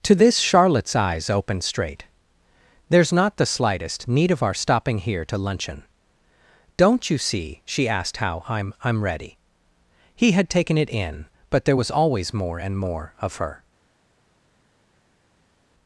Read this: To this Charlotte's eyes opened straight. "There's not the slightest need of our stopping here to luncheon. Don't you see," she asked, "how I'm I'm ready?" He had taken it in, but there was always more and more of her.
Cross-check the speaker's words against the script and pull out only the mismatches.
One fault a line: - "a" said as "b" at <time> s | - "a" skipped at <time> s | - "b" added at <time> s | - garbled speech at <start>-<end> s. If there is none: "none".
none